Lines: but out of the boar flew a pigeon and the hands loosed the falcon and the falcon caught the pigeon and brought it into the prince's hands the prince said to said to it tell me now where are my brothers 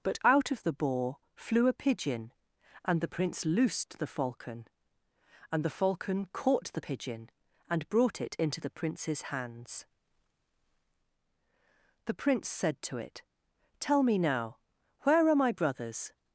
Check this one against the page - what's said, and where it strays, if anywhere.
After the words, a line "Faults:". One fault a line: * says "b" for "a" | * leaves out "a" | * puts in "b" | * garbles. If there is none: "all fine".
but out of the boar flew a pigeon and the prince loosed the falcon and the falcon caught the pigeon and brought it into the prince's hands the prince said to it tell me now where are my brothers
Faults:
* says "prince" for "hands"
* leaves out "said to"